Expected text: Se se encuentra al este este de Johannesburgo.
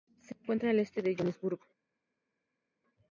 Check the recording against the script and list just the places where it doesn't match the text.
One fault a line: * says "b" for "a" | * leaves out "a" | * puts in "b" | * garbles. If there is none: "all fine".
* leaves out "se"
* leaves out "este"